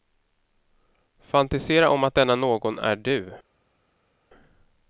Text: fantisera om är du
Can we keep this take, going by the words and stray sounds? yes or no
no